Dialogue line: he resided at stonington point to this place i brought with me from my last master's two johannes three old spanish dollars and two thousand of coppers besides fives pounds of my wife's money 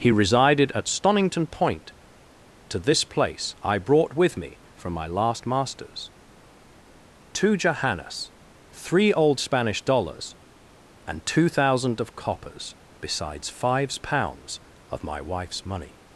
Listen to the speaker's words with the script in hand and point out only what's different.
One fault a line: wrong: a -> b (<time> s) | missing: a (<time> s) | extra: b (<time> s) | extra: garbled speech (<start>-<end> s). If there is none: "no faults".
no faults